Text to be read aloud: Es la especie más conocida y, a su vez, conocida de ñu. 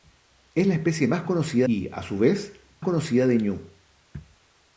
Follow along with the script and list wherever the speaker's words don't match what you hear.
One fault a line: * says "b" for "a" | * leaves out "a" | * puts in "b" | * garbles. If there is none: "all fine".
all fine